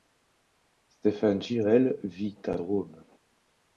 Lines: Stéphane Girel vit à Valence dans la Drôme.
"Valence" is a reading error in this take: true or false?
true